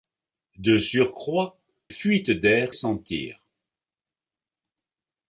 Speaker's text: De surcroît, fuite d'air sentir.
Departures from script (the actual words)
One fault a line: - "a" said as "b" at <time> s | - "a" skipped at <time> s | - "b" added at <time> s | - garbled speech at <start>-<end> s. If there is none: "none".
none